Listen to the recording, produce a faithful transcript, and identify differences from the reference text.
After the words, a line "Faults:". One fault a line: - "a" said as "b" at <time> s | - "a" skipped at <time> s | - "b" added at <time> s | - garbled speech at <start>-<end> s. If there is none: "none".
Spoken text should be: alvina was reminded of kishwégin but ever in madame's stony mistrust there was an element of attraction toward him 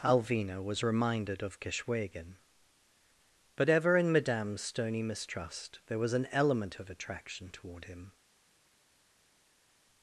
alvina was reminded of kishwégin but ever in madame's stony mistrust there was an element of attraction toward him
Faults:
none